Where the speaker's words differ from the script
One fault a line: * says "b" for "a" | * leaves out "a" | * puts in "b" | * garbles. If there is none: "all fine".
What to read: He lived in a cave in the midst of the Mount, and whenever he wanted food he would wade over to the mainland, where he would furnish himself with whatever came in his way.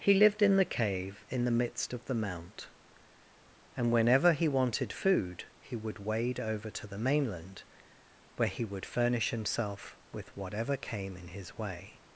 * says "the" for "a"